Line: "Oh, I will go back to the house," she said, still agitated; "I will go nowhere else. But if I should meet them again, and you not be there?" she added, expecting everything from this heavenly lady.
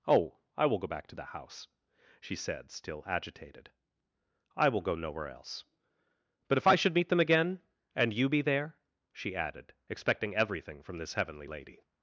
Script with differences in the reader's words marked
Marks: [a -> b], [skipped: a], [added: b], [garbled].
"Oh, I will go back to the house," she said, still agitated; "I will go nowhere else. But if I should meet them again, and you [skipped: not] be there?" she added, expecting everything from this heavenly lady.